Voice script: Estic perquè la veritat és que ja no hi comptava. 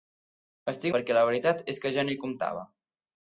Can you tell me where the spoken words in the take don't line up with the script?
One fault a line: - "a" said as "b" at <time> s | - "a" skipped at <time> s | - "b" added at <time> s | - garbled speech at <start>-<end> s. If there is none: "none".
none